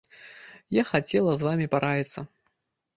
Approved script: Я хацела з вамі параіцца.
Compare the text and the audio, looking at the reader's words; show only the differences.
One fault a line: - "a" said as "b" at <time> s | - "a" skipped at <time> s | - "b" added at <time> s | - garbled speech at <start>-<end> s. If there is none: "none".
none